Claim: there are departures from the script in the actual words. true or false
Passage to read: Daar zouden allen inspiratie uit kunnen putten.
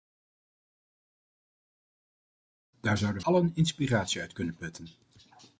false